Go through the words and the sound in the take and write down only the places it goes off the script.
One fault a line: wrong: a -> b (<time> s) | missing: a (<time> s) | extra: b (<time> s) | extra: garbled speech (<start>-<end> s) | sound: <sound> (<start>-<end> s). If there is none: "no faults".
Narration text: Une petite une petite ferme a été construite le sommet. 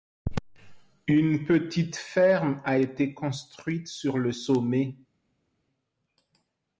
missing: une petite (1.9 s)
extra: sur (3.9 s)